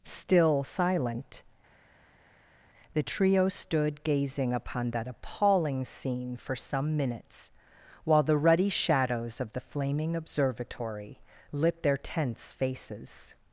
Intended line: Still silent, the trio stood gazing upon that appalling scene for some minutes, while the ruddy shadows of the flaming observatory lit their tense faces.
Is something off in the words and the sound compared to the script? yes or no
no